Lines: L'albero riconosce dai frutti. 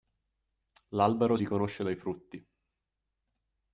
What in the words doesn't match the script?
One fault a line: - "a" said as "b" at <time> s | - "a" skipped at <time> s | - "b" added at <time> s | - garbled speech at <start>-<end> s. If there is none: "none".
none